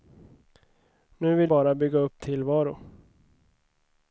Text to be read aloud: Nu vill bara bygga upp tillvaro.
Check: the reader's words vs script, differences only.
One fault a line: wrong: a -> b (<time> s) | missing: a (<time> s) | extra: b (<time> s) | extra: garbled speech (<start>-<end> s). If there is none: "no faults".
no faults